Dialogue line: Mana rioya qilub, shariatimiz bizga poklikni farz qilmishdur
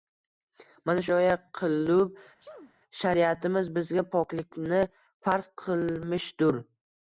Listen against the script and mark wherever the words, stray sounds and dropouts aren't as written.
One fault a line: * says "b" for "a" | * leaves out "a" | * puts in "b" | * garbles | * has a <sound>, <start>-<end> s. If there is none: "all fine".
* has a sneeze, 2.4-2.7 s